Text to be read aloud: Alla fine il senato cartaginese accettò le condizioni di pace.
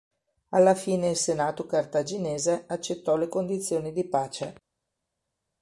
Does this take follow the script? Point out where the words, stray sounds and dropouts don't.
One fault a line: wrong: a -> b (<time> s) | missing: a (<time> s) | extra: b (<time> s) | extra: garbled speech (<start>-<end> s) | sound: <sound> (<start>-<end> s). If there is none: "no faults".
no faults